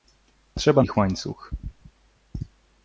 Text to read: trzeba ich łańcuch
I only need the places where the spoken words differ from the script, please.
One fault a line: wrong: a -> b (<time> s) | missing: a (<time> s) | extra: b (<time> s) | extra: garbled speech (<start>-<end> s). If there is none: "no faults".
no faults